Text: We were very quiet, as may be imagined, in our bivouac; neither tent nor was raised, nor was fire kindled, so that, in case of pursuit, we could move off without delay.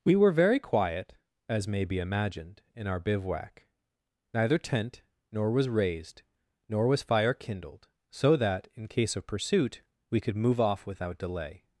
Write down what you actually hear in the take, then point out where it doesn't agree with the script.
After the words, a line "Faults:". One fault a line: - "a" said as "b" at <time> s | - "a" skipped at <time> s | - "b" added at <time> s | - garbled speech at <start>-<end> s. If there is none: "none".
We were very quiet, as may be imagined, in our bivouac; neither tent nor was raised, nor was fire kindled, so that, in case of pursuit, we could move off without delay.
Faults:
none